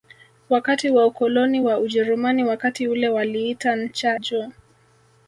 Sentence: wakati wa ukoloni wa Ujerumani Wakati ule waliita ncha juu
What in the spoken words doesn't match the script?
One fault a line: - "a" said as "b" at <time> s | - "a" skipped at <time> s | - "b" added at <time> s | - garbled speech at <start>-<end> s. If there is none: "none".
none